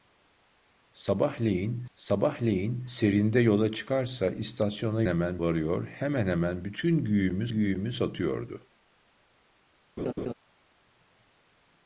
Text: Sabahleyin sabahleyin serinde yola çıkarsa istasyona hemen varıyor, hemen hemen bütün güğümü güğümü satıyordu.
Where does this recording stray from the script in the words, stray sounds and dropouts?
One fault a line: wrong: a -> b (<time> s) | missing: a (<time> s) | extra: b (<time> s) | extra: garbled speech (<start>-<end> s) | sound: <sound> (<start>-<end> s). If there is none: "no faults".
sound: laugh (10.0-10.3 s)